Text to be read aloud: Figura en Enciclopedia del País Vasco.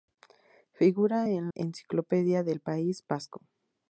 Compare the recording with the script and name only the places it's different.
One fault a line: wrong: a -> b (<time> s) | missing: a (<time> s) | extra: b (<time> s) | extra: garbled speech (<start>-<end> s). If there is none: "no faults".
no faults